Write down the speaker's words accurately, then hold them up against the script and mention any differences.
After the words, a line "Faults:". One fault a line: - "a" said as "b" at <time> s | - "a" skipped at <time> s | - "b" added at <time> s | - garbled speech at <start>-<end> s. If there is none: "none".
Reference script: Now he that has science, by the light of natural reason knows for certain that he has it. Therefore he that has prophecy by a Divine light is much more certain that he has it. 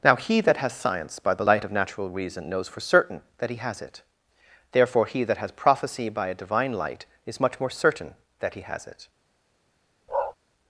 Now he that has science, by the light of natural reason knows for certain that he has it. Therefore he that has prophecy by a Divine light is much more certain that he has it.
Faults:
none